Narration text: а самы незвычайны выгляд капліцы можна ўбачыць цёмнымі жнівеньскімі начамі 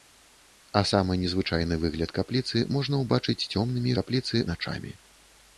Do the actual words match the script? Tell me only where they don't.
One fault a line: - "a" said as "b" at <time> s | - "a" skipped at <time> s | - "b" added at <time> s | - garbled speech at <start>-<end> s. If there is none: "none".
- "жнівеньскімі" said as "капліцы" at 4.0 s